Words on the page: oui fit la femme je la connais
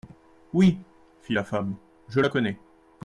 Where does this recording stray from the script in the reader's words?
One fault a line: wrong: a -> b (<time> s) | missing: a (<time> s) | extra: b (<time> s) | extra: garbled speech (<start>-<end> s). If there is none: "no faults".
no faults